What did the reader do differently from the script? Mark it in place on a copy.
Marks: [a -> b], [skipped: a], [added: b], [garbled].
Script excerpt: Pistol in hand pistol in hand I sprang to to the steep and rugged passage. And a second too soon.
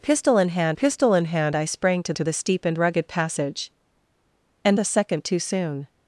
Pistol in hand pistol in hand I sprang to to the steep and rugged passage. And a second too soon.